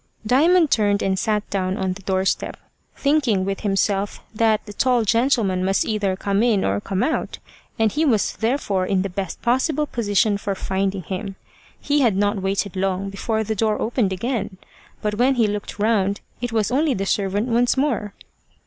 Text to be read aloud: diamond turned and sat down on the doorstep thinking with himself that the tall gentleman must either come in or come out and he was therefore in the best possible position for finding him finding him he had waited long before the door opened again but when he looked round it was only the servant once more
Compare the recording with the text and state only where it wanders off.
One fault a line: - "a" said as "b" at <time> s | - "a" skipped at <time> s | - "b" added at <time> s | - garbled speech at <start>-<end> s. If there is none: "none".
- "finding him" skipped at 11.3 s
- "not" added at 12.1 s